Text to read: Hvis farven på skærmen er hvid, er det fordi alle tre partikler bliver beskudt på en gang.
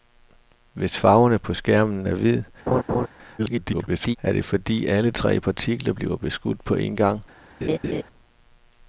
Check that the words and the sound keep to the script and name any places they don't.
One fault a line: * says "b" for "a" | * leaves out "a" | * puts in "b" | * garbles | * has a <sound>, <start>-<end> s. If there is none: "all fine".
* has a laugh, 2.7-3.1 s
* garbles
* has a laugh, 7.6-8.0 s